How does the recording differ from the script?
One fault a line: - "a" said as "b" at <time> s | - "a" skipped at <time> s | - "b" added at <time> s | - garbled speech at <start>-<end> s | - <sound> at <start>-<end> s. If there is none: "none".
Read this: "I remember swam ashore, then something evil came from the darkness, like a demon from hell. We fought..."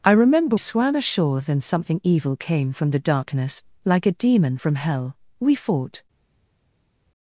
none